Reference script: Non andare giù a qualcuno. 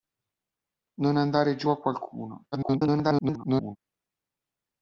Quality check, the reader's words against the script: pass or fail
fail